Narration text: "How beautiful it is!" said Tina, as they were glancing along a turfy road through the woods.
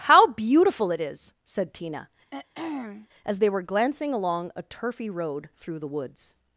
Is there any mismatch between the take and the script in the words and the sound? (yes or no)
yes